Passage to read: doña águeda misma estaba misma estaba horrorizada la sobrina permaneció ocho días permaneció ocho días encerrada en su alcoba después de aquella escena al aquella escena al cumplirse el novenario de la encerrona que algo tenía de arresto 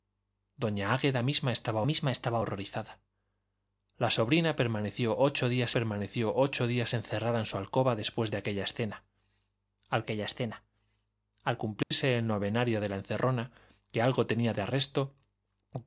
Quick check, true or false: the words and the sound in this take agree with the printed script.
false